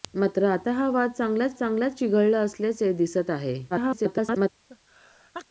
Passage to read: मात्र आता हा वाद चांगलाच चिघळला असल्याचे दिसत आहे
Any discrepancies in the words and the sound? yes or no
yes